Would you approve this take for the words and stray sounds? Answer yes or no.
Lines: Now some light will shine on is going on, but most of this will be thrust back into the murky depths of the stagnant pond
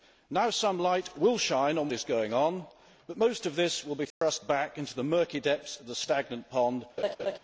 no